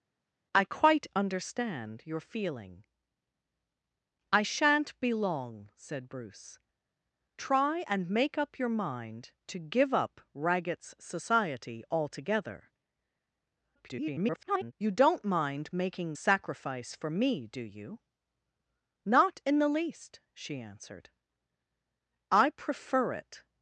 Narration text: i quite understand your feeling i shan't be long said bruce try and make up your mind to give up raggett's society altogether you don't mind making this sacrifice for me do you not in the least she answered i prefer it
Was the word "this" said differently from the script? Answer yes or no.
yes